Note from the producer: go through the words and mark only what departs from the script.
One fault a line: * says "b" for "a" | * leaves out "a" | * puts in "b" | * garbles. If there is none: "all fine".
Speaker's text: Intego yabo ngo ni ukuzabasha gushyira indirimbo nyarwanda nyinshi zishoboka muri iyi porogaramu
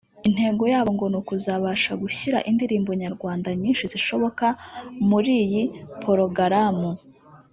all fine